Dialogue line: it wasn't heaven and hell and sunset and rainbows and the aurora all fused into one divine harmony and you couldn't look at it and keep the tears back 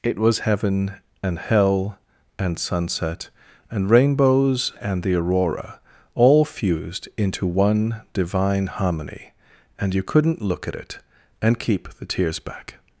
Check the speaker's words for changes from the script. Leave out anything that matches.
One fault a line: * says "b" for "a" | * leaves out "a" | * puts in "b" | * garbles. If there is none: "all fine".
* says "was" for "wasn't"